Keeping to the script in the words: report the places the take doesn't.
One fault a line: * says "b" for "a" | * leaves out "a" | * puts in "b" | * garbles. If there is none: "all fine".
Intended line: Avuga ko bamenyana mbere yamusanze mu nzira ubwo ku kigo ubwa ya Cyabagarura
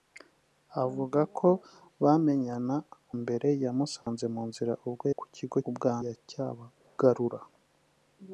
all fine